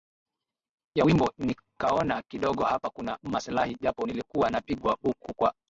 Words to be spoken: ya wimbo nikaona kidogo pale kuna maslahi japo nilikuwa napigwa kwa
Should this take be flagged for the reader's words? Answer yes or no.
yes